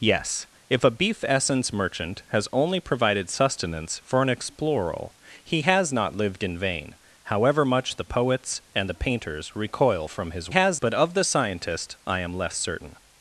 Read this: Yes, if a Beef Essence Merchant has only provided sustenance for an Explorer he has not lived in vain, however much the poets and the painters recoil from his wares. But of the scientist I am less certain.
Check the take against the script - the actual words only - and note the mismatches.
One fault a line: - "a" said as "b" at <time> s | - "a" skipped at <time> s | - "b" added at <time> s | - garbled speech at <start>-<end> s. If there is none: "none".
- "wares" said as "has" at 10.5 s